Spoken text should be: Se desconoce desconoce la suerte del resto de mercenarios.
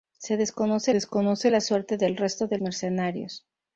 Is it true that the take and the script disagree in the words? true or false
false